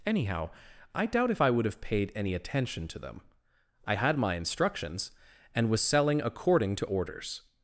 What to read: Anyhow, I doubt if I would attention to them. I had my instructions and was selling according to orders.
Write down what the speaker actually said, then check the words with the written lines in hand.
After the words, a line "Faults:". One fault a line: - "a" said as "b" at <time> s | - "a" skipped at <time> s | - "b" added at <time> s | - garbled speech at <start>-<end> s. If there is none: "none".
Anyhow, I doubt if I would have paid any attention to them. I had my instructions and was selling according to orders.
Faults:
- "have paid any" added at 1.7 s